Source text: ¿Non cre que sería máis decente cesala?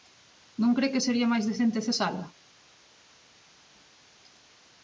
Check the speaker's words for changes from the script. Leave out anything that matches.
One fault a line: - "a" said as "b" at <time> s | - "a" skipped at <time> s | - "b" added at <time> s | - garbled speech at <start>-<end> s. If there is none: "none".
none